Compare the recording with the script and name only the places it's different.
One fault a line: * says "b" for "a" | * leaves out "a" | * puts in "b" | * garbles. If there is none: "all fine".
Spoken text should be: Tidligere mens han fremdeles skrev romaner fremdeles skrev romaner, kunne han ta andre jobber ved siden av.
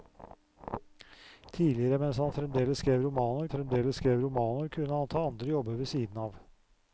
all fine